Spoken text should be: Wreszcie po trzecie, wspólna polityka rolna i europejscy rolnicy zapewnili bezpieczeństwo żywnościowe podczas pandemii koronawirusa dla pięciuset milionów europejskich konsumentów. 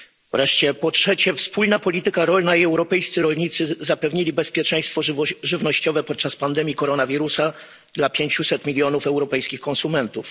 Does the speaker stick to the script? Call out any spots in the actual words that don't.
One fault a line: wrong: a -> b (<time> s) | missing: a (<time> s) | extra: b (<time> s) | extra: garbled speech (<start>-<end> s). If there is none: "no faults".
no faults